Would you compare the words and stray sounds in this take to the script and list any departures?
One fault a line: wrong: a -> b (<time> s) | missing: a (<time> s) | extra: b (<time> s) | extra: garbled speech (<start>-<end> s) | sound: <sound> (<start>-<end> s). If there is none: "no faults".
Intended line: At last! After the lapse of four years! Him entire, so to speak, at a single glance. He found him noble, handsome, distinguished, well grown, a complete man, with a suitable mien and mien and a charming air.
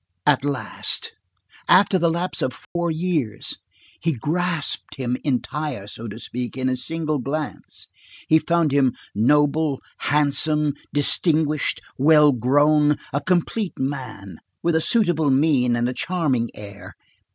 sound: dropout (2.6-2.8 s)
extra: He grasped (4.0 s)
wrong: at -> in (6.6 s)
missing: mien and (15.9 s)